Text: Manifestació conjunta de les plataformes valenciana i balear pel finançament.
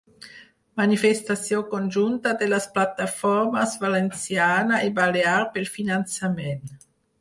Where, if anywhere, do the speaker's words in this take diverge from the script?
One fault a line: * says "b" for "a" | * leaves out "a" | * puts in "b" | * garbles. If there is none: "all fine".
all fine